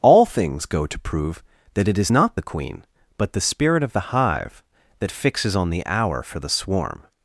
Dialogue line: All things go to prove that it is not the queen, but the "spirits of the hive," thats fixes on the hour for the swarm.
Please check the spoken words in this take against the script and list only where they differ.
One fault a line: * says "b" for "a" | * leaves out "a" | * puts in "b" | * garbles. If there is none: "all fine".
* says "spirit" for "spirits"
* says "that" for "thats"